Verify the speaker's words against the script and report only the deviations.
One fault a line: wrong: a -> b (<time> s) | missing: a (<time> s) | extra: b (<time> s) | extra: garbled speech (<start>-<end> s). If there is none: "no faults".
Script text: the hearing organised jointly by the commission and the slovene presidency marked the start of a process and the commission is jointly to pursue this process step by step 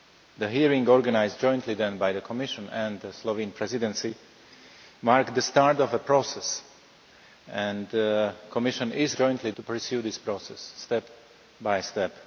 no faults